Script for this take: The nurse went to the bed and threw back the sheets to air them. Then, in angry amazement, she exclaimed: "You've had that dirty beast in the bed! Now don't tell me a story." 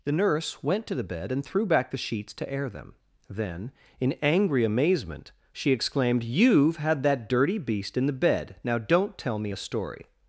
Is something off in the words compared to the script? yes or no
no